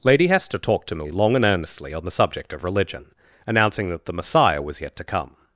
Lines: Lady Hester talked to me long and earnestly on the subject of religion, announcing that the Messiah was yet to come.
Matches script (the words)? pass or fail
pass